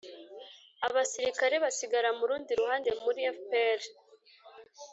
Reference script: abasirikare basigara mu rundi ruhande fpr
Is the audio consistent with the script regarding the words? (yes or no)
no